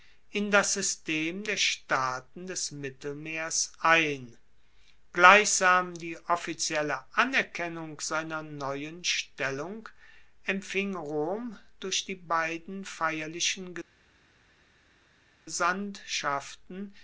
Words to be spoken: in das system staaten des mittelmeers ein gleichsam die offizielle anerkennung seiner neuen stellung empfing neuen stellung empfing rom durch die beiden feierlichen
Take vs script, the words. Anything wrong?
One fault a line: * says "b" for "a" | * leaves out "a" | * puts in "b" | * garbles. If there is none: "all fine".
* puts in "der"
* leaves out "neuen stellung empfing"